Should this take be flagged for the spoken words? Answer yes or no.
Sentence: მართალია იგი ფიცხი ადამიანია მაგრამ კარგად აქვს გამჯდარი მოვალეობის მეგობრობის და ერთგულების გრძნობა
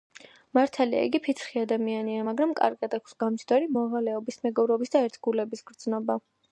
no